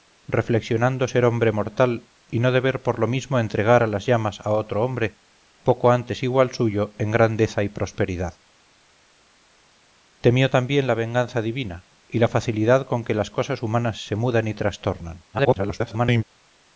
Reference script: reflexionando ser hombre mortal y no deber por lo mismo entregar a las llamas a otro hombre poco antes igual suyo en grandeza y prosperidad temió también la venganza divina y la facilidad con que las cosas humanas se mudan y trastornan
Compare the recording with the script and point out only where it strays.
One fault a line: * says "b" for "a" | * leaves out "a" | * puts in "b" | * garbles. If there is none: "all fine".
* garbles